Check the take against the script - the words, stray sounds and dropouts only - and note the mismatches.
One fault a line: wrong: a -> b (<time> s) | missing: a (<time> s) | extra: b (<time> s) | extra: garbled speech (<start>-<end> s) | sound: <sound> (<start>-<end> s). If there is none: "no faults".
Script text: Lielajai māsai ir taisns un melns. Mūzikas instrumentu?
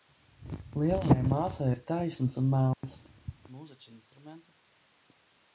sound: dropout (2.7-2.8 s)